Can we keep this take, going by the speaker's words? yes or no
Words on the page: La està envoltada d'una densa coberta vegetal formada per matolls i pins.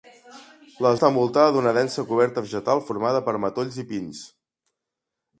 yes